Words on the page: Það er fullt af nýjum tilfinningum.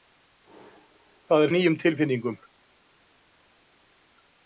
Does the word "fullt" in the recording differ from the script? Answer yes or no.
yes